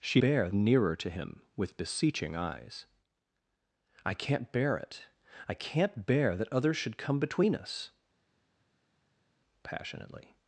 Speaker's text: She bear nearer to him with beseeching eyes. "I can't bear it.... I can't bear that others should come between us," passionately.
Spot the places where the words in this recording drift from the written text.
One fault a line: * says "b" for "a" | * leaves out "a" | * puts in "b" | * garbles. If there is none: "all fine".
all fine